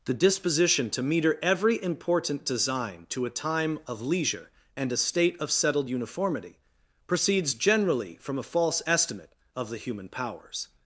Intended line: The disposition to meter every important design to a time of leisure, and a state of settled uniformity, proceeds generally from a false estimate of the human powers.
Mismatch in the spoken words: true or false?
false